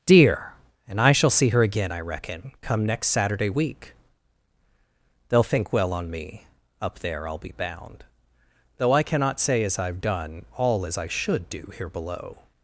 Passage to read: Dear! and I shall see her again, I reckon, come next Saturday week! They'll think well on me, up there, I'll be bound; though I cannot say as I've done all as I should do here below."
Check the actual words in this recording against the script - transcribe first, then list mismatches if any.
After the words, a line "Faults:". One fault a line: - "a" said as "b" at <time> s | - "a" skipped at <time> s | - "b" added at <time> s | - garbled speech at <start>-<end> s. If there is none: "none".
Dear! and I shall see her again, I reckon, come next Saturday week! They'll think well on me, up there, I'll be bound; though I cannot say as I've done all as I should do here below."
Faults:
none